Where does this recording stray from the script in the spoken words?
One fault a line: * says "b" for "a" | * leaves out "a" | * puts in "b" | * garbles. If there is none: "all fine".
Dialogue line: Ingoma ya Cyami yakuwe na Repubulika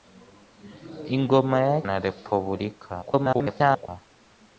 * leaves out "Cyami yakuwe"
* garbles